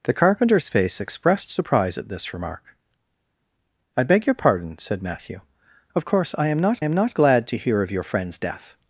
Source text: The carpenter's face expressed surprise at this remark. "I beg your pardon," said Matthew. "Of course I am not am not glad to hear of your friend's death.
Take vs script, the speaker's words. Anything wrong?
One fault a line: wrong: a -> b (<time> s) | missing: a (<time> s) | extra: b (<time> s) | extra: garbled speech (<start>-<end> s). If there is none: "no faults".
no faults